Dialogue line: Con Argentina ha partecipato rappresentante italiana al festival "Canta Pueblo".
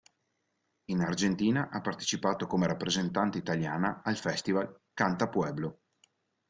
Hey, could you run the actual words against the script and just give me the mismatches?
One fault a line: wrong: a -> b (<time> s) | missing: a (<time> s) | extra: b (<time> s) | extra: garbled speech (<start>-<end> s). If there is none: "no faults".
wrong: Con -> In (0.8 s)
extra: come (2.5 s)